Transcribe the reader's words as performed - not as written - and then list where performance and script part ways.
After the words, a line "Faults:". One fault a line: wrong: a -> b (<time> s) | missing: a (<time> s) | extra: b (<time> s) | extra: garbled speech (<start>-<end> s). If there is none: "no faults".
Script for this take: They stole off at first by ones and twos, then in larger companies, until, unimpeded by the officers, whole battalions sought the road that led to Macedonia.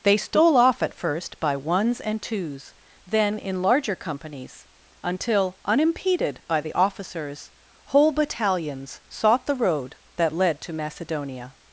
They stole off at first by ones and twos, then in larger companies, until, unimpeded by the officers, whole battalions sought the road that led to Macedonia.
Faults:
no faults